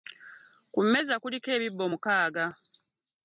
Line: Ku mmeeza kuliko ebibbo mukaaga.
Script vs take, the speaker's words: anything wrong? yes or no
no